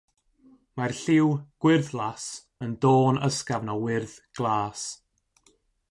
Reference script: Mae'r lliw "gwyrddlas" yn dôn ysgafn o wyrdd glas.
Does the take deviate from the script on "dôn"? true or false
false